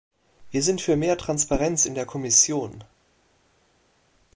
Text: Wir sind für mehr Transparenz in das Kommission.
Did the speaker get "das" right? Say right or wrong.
wrong